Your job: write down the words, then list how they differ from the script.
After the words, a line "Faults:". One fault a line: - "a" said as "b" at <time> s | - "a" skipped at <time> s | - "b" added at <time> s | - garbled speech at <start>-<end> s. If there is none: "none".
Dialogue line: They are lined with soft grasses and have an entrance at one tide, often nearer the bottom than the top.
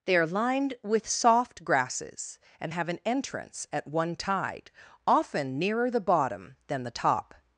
They are lined with soft grasses and have an entrance at one tide, often nearer the bottom than the top.
Faults:
none